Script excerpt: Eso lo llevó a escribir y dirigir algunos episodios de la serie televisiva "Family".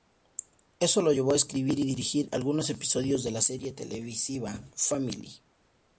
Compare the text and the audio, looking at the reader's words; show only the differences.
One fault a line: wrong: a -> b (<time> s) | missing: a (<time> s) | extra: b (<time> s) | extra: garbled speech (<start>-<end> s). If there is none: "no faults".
no faults